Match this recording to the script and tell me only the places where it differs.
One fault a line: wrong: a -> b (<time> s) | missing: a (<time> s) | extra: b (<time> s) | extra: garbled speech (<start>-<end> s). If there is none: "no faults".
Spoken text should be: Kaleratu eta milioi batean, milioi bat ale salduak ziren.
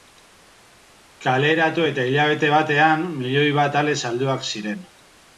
wrong: milioi -> hilabete (2.1 s)